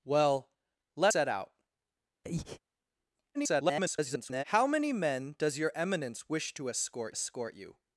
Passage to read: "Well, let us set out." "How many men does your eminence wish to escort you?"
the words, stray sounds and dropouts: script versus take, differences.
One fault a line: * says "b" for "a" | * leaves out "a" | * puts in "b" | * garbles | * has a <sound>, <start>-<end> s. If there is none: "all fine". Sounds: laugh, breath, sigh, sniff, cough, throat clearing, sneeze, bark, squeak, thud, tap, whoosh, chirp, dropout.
* leaves out "us"
* has a breath, 2.2-2.6 s
* garbles
* puts in "escort"